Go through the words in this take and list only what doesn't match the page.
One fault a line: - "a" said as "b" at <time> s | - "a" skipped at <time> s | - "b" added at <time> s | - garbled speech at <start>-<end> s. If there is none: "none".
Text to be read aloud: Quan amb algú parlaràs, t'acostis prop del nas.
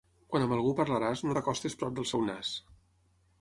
- "no" added at 1.3 s
- "seu" added at 2.1 s